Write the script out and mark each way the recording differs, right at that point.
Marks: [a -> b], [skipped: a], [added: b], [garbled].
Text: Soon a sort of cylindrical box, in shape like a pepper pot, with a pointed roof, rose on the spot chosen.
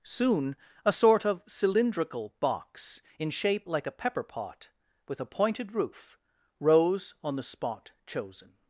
Soon a sort of cylindrical box, in shape like a pepper pot, with a pointed roof, rose on the spot chosen.